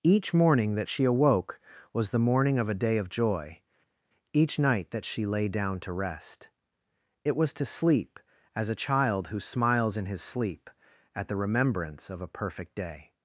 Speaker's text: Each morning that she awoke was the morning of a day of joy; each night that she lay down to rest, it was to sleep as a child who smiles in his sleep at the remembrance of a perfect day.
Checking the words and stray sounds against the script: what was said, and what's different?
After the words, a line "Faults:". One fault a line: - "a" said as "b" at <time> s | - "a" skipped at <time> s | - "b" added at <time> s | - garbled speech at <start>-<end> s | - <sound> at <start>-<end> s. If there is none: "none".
Each morning that she awoke was the morning of a day of joy; each night that she lay down to rest, it was to sleep as a child who smiles in his sleep at the remembrance of a perfect day.
Faults:
none